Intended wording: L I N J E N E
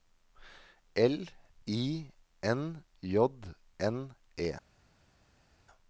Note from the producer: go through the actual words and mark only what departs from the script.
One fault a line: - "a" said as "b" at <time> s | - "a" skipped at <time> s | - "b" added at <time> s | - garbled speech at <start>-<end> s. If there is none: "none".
- "E" skipped at 3.3 s